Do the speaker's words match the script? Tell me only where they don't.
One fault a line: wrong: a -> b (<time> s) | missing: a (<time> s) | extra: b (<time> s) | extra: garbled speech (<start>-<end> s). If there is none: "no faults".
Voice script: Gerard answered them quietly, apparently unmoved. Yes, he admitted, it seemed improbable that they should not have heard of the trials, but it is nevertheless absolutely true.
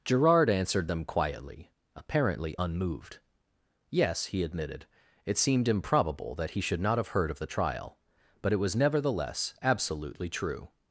wrong: they -> he (6.5 s)
wrong: trials -> trial (7.5 s)
wrong: is -> was (8.6 s)